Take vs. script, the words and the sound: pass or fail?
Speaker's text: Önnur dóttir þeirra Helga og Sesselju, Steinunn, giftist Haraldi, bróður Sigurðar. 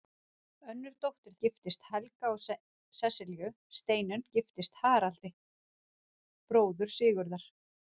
fail